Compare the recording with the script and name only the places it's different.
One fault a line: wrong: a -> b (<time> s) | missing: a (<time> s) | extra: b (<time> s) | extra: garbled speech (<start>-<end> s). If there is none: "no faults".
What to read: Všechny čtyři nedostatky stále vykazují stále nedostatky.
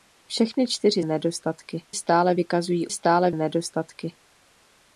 no faults